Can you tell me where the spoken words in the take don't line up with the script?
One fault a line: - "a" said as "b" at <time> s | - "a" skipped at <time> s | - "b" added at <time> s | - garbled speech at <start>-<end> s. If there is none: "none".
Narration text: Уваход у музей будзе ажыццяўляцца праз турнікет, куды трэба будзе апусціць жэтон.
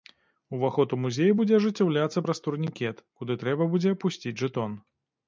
none